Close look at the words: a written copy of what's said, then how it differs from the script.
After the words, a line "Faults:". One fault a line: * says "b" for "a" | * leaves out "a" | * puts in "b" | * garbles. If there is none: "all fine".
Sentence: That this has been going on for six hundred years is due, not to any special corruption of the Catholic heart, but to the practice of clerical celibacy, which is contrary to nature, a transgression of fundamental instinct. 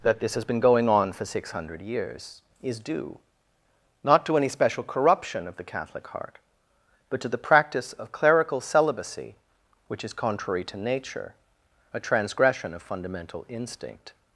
That this has been going on for six hundred years is due, not to any special corruption of the Catholic heart, but to the practice of clerical celibacy, which is contrary to nature, a transgression of fundamental instinct.
Faults:
all fine